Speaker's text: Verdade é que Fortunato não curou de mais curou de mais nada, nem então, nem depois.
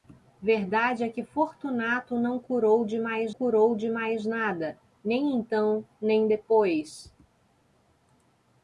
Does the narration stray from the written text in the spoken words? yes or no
no